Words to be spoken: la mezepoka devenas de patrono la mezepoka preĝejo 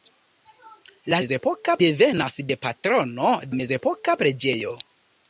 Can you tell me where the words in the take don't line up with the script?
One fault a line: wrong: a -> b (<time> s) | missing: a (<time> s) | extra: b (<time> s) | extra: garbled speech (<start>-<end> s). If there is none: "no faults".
no faults